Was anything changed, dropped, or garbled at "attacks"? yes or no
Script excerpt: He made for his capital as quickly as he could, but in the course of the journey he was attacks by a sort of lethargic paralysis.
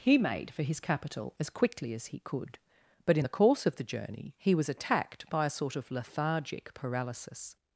yes